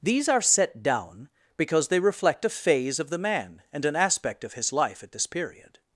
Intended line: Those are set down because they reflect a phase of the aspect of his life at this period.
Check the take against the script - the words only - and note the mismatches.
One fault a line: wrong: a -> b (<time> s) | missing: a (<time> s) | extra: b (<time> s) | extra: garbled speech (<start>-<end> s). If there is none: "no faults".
wrong: Those -> These (0.0 s)
extra: man and an (3.2 s)